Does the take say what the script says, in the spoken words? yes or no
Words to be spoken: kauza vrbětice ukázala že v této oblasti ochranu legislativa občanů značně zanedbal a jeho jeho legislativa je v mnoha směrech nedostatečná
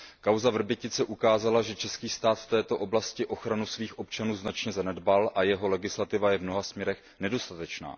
no